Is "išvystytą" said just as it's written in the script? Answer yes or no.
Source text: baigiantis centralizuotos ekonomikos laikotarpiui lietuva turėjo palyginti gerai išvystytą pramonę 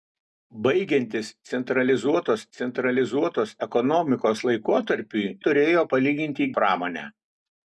no